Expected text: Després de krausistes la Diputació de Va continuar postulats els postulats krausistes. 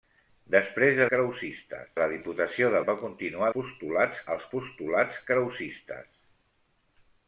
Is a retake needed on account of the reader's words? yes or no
no